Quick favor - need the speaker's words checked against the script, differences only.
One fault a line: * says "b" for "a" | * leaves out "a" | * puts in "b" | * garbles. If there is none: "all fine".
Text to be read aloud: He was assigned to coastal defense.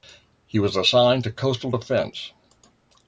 all fine